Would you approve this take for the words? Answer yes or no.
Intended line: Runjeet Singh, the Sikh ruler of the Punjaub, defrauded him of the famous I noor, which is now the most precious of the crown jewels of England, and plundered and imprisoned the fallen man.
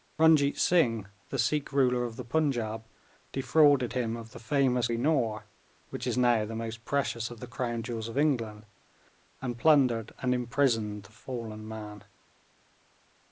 yes